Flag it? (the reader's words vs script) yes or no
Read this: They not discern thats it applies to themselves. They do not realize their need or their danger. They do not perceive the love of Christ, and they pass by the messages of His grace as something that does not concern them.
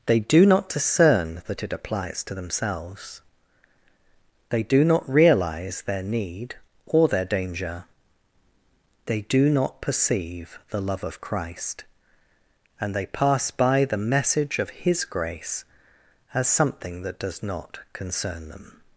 yes